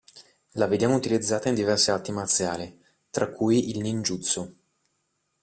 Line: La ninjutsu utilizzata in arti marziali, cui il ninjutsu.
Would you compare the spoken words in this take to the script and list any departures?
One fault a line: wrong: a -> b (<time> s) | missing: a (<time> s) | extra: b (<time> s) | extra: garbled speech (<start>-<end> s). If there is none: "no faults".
wrong: ninjutsu -> vediamo (0.7 s)
extra: diverse (1.5 s)
extra: tra (3.1 s)